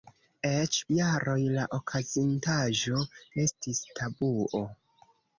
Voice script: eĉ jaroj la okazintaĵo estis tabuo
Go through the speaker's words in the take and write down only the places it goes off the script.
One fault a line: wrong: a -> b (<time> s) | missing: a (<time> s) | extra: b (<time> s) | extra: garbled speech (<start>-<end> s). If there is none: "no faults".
no faults